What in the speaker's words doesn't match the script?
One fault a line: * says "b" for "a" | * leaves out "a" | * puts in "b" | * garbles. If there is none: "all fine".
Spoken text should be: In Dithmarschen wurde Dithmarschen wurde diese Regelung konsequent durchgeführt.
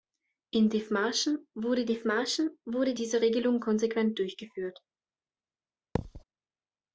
all fine